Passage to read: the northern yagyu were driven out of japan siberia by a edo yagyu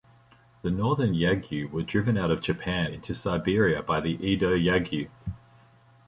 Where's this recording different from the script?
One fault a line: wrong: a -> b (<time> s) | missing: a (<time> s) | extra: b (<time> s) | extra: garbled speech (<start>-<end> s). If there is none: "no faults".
extra: into (2.9 s)
wrong: a -> the (4.0 s)